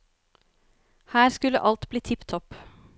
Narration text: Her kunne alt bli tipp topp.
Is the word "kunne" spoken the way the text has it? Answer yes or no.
no